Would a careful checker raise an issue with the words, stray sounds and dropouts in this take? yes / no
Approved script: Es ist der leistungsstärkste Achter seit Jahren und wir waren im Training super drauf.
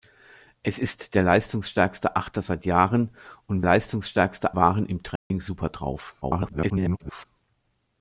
yes